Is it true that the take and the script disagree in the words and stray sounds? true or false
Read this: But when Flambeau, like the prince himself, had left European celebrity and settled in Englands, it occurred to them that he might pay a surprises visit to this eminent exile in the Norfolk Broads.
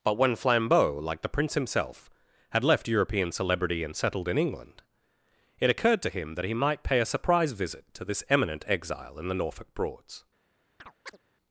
true